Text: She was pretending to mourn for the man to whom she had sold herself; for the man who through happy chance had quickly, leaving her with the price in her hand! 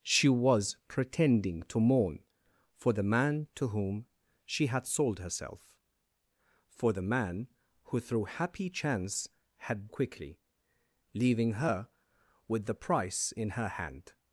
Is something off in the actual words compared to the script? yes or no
no